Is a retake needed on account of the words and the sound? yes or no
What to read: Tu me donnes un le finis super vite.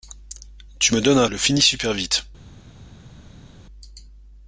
no